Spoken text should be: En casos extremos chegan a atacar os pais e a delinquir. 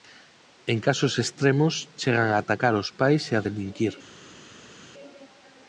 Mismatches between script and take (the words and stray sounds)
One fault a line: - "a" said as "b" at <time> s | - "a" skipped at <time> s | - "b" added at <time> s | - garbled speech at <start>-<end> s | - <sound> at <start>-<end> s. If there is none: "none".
none